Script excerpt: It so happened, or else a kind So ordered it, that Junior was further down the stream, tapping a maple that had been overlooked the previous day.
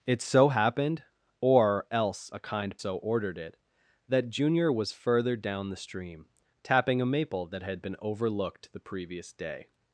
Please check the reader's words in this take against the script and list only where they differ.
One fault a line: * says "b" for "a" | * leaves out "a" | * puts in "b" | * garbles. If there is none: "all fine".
all fine